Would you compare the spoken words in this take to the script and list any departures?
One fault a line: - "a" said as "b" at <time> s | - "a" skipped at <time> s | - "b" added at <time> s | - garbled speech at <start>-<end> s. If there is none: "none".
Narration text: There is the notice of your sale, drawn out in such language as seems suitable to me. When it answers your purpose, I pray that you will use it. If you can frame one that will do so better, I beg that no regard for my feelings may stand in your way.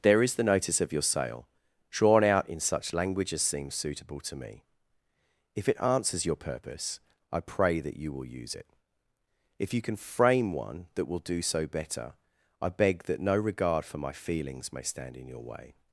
- "When" said as "If" at 5.5 s